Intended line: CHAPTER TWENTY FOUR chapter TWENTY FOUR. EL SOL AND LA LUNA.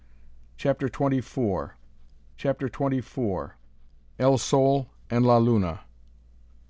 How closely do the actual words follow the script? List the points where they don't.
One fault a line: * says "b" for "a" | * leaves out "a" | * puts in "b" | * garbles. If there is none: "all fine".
all fine